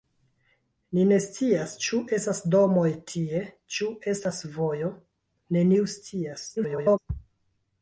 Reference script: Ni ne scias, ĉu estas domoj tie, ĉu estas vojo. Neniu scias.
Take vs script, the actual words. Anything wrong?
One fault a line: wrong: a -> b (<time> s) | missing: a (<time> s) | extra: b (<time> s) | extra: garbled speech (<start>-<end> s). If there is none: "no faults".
extra: garbled speech (6.6-7.0 s)